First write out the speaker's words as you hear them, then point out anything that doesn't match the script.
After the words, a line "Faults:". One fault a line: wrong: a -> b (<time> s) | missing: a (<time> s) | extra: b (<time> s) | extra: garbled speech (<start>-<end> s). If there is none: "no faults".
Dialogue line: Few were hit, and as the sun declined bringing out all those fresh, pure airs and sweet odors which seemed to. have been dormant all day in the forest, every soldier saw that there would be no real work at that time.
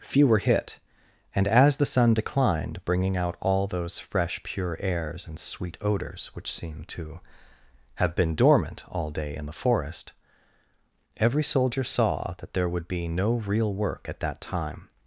Few were hit, and as the sun declined bringing out all those fresh, pure airs and sweet odors which seemed to. have been dormant all day in the forest, every soldier saw that there would be no real work at that time.
Faults:
no faults